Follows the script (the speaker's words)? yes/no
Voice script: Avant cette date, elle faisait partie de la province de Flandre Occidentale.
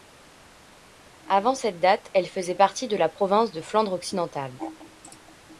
yes